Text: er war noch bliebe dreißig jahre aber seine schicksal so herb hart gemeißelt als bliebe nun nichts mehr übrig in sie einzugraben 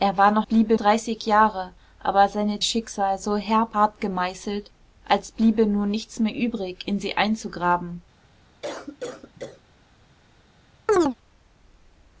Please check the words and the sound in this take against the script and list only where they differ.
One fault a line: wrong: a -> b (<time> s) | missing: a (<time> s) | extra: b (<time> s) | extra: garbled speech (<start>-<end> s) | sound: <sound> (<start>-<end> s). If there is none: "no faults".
sound: cough (8.6-9.6 s)
sound: chirp (10.9-11.2 s)